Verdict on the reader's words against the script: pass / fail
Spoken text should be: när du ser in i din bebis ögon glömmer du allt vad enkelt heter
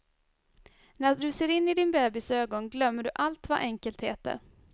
pass